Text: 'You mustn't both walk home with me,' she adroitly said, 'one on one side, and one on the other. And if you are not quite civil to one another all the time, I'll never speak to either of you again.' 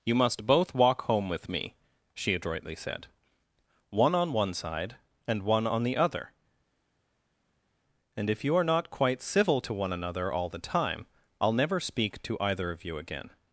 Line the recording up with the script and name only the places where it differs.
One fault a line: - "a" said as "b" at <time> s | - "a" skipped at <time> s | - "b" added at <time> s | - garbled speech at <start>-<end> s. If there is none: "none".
- "mustn't" said as "must" at 0.1 s